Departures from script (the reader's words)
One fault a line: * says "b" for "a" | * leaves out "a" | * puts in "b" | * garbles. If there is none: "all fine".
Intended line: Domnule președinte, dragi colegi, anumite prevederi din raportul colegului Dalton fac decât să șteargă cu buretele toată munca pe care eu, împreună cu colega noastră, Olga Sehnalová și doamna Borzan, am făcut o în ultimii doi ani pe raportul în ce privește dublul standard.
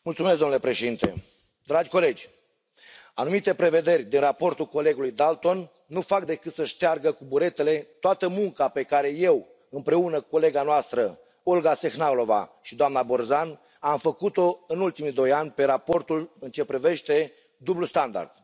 * puts in "nu"